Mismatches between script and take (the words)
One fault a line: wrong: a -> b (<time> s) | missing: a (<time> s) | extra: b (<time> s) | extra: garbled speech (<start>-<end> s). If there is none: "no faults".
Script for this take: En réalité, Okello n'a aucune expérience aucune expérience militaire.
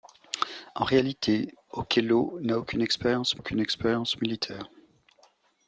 no faults